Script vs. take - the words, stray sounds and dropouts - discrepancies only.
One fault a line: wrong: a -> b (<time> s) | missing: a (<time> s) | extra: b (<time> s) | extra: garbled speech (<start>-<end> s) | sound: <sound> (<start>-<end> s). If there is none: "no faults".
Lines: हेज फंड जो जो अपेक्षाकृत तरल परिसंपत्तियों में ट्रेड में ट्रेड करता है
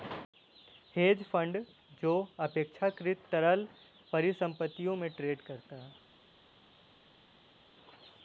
missing: जो (2.1 s)
missing: में ट्रेड (5.4 s)